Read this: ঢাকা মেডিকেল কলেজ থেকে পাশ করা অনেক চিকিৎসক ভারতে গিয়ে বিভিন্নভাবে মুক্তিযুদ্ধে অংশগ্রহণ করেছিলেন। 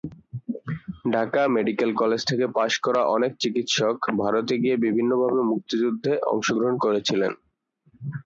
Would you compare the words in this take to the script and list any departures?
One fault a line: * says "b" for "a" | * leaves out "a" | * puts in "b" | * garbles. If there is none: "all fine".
all fine